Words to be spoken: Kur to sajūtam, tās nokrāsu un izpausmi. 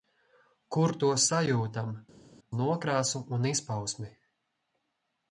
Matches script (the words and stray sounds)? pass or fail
fail